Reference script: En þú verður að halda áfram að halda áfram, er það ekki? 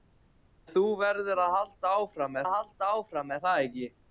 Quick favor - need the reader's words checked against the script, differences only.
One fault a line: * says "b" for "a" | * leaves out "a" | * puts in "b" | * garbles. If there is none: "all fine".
all fine